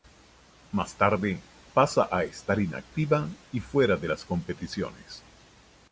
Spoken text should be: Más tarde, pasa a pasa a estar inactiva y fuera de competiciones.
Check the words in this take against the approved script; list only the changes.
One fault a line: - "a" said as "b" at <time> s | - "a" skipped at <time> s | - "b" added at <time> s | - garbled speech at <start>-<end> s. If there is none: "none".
- "pasa a" skipped at 2.2 s
- "las" added at 4.1 s